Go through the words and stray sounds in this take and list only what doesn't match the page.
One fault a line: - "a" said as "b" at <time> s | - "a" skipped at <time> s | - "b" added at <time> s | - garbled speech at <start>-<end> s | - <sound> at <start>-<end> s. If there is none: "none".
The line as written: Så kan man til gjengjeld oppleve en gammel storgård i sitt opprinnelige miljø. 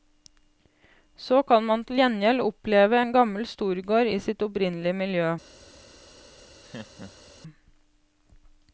- laugh at 6.6-7.3 s